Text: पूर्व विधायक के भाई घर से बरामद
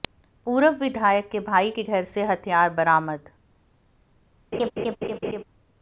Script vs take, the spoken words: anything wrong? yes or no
yes